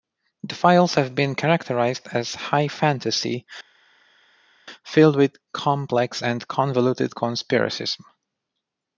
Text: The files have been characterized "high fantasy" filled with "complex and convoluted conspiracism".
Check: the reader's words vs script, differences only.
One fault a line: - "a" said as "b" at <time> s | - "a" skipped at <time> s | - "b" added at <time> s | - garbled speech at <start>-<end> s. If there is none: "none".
- "as" added at 2.1 s